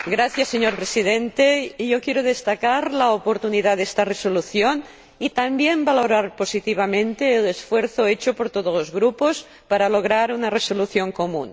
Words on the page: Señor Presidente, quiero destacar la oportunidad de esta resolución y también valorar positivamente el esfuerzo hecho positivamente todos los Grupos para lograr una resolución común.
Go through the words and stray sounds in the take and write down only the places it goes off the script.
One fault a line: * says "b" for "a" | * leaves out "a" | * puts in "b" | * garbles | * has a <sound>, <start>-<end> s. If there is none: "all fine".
* says "por" for "positivamente"